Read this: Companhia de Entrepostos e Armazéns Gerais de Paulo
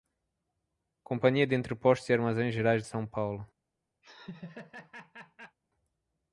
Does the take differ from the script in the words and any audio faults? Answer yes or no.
yes